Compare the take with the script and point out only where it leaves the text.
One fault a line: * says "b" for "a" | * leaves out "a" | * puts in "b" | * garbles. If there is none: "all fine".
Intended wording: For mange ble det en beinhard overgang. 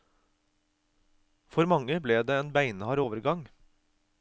all fine